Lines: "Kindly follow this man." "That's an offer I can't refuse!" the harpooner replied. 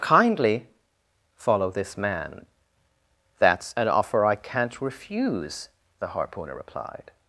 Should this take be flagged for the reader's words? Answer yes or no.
no